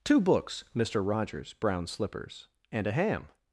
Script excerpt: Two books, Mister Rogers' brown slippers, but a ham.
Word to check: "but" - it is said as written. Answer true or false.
false